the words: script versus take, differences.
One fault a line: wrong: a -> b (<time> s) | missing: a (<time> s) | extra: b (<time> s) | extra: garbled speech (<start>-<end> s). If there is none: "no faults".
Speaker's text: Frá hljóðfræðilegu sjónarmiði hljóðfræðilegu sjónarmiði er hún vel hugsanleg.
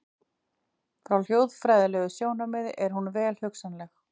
missing: hljóðfræðilegu sjónarmiði (2.7 s)